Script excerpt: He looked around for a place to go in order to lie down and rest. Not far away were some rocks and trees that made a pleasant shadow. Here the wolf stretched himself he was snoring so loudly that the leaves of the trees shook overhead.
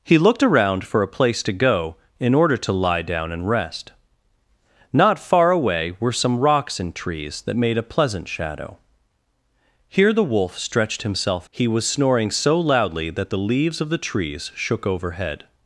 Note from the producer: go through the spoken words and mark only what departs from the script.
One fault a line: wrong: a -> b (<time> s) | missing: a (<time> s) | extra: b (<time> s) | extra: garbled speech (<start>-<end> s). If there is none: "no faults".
no faults